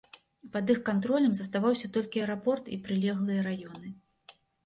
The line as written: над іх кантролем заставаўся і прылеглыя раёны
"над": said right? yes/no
no